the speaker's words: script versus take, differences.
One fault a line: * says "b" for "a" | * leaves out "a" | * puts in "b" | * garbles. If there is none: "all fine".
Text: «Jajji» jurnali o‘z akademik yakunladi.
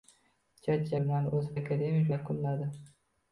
all fine